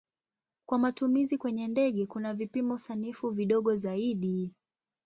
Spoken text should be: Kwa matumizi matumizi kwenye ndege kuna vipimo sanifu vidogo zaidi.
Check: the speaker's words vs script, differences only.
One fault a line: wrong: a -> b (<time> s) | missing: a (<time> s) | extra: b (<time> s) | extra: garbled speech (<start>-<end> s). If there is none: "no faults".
missing: matumizi (1.4 s)